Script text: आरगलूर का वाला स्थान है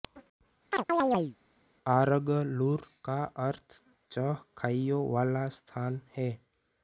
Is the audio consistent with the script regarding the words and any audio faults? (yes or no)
no